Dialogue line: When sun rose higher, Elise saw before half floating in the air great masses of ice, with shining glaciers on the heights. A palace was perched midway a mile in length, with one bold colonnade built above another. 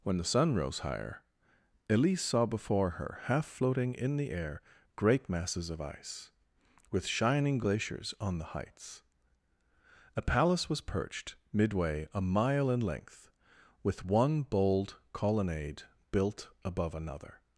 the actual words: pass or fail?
fail